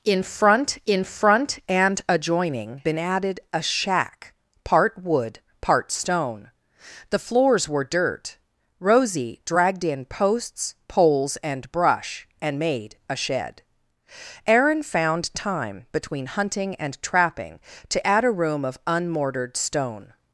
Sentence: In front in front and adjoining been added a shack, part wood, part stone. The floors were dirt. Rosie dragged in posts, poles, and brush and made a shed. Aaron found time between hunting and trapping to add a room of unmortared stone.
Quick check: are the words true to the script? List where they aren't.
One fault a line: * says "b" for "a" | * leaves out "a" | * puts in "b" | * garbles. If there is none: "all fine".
all fine